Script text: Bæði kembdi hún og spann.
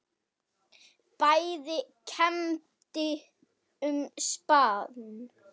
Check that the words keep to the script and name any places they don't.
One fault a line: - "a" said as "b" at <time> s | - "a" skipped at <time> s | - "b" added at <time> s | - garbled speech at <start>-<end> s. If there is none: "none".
- "hún" skipped at 3.0 s